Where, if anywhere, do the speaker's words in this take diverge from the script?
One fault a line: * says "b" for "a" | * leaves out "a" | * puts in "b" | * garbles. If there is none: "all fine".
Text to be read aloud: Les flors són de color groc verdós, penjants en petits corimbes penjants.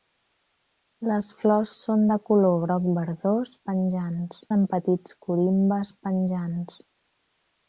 all fine